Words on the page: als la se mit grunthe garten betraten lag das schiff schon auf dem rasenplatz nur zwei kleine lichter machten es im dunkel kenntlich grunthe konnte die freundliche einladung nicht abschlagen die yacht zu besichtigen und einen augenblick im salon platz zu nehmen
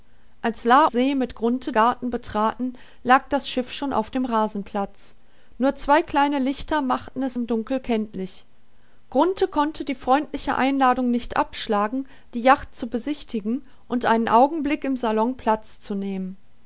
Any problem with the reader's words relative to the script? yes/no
no